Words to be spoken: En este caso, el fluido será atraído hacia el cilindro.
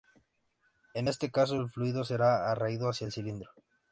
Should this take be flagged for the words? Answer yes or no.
no